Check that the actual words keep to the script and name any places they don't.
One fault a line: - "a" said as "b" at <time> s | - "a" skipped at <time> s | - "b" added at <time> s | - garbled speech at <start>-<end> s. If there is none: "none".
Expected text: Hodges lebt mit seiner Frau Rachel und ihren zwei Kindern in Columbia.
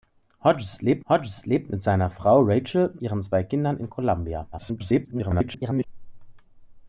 - "hodges lebt" added at 1.1 s
- "und" skipped at 3.0 s
- garbled speech at 4.5-5.9 s